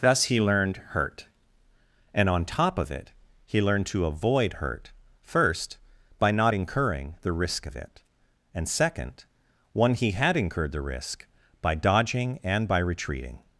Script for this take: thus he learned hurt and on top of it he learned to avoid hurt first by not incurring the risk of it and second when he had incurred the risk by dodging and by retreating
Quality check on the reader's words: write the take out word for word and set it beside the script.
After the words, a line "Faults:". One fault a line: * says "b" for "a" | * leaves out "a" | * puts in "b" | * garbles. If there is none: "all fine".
thus he learned hurt and on top of it he learned to avoid hurt first by not incurring the risk of it and second one he had incurred the risk by dodging and by retreating
Faults:
* says "one" for "when"